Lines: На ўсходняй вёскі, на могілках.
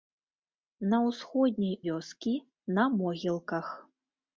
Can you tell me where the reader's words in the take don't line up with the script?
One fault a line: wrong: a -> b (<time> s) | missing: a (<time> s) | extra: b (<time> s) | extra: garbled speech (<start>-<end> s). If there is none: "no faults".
no faults